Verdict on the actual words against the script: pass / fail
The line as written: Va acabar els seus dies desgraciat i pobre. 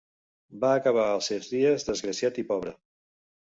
pass